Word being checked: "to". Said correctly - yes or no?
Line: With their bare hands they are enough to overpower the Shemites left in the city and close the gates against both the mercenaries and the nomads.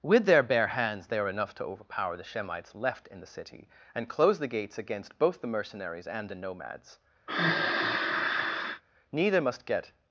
yes